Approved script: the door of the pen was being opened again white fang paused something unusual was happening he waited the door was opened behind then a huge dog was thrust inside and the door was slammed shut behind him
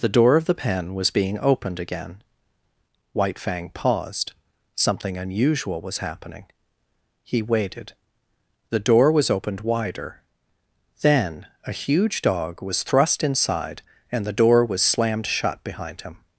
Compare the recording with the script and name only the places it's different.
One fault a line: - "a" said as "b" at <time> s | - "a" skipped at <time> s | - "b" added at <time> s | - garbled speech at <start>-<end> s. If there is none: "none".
- "behind" said as "wider" at 9.6 s